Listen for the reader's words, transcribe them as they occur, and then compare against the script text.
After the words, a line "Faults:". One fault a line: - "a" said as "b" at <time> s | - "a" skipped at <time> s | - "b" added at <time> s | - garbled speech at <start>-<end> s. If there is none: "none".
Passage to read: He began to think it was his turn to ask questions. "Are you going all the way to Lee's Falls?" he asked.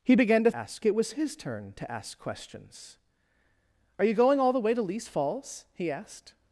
He began to ask it was his turn to ask questions. "Are you going all the way to Lee's Falls?" he asked.
Faults:
- "think" said as "ask" at 0.5 s